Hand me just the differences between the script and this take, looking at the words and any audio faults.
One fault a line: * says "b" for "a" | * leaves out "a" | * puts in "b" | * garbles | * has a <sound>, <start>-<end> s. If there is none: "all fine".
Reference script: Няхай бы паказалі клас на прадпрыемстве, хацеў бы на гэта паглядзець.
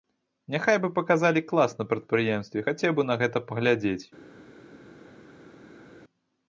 all fine